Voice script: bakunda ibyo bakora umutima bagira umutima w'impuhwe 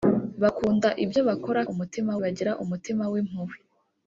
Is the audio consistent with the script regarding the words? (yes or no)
yes